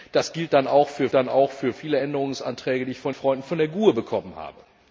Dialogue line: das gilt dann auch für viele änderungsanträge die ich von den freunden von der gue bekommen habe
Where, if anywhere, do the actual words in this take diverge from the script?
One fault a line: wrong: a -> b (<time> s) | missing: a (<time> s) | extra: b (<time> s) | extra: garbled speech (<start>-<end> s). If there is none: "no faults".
extra: dann auch für (1.1 s)
missing: den (3.1 s)